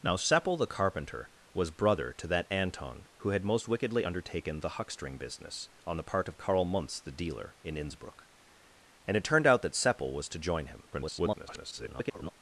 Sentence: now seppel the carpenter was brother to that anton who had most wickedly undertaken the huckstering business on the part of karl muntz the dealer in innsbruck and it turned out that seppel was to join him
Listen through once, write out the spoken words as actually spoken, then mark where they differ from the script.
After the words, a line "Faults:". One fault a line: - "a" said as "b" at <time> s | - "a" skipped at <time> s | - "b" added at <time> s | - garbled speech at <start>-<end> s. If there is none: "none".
now seppel the carpenter was brother to that anton who had most wickedly undertaken the huckstering business on the part of karl muntz the dealer in innsbruck and it turned out that seppel was to join him [garbled]
Faults:
- garbled speech at 10.9-12.3 s